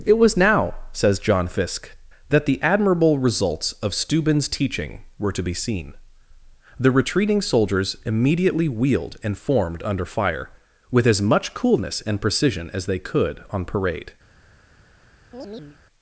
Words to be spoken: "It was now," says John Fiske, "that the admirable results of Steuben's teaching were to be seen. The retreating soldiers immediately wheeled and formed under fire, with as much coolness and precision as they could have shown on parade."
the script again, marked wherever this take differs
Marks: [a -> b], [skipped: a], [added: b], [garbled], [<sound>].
"It was now," says John Fiske, "that the admirable results of Steuben's teaching were to be seen. The retreating soldiers immediately wheeled and formed under fire, with as much coolness and precision as they could [skipped: have shown] on parade." [chirp]